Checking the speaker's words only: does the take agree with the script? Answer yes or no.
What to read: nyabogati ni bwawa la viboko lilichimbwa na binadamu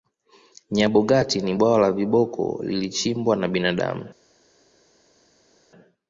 yes